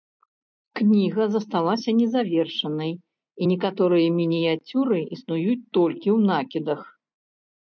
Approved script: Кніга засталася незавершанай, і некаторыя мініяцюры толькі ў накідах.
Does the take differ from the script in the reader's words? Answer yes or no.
yes